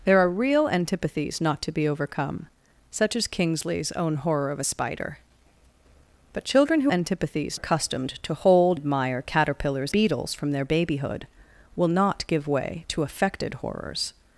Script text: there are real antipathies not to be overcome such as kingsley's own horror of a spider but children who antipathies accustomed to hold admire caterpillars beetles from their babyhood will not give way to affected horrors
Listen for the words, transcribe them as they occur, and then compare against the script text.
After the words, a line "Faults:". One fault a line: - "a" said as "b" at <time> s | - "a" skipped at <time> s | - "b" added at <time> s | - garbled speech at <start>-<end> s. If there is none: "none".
there are real antipathies not to be overcome such as kingsley's own horror of a spider but children who antipathies accustomed to hold admire caterpillars beetles from their babyhood will not give way to affected horrors
Faults:
none